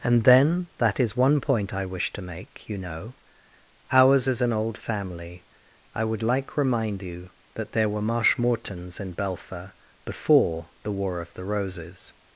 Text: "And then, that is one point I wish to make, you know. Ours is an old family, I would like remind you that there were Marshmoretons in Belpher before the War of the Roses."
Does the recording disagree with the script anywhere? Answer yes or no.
no